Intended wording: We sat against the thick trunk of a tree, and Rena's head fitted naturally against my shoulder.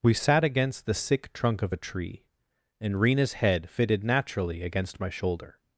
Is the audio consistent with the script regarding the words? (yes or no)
no